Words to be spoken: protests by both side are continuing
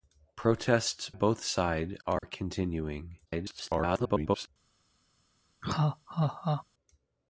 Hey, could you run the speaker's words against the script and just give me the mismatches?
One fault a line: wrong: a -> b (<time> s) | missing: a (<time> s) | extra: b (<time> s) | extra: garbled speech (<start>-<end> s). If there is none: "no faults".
missing: by (1.1 s)
extra: garbled speech (3.3-4.5 s)